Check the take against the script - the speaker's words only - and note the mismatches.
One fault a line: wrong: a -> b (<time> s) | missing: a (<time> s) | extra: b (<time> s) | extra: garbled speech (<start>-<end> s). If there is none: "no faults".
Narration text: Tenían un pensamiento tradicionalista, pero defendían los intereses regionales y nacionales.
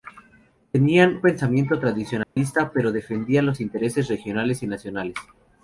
missing: un (1.2 s)